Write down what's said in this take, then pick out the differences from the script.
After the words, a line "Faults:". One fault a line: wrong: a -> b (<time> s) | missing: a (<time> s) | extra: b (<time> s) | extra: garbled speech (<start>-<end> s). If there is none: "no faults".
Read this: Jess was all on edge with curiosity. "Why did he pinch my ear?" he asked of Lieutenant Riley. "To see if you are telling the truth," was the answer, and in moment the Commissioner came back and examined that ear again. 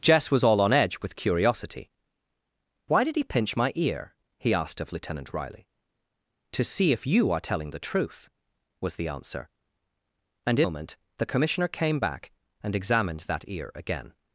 Jess was all on edge with curiosity. "Why did he pinch my ear?" he asked of Lieutenant Riley. "To see if you are telling the truth," was the answer, and in moment the Commissioner came back and examined that ear again.
Faults:
no faults